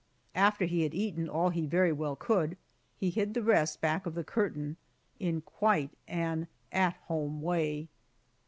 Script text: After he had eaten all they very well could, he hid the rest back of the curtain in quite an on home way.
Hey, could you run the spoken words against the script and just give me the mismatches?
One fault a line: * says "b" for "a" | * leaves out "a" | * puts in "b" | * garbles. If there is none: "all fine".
* says "he" for "they"
* says "at" for "on"